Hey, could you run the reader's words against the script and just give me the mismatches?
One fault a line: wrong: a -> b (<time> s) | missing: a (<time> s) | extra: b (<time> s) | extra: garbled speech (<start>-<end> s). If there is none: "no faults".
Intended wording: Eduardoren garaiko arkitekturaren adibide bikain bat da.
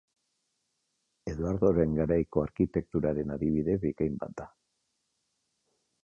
no faults